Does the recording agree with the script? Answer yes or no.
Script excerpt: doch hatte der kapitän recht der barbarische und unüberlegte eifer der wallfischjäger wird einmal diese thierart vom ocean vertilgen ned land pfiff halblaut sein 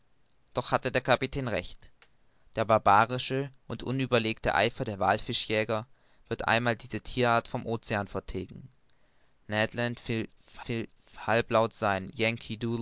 no